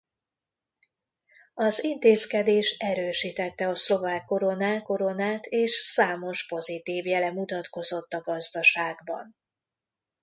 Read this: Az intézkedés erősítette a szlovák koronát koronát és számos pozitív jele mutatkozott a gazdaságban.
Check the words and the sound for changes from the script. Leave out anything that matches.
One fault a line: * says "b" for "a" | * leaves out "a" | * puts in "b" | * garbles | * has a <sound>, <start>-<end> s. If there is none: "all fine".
all fine